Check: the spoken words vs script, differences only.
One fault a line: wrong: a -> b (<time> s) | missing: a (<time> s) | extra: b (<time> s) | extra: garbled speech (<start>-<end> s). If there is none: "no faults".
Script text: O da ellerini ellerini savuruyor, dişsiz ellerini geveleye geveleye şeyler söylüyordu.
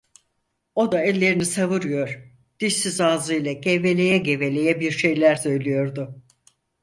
missing: ellerini (1.4 s)
wrong: ellerini -> ağzıyla (3.0 s)
extra: bir (4.8 s)